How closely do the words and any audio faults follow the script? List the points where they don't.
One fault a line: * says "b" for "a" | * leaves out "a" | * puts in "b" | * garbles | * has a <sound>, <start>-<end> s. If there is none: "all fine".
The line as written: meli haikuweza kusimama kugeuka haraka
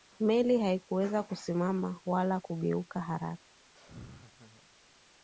* puts in "wala"
* has a laugh, 3.7-4.7 s